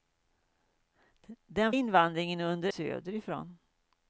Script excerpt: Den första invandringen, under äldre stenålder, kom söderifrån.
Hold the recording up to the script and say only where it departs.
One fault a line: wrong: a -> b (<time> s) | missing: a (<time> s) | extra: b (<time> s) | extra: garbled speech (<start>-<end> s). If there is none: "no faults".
missing: första (1.7 s)
missing: äldre stenålder kom (2.7 s)